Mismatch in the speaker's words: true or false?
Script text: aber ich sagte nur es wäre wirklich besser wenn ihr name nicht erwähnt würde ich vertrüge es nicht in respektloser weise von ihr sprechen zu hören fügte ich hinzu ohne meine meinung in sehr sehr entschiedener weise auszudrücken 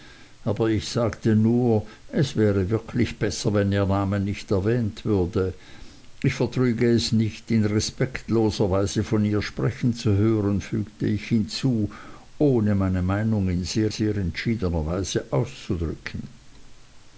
false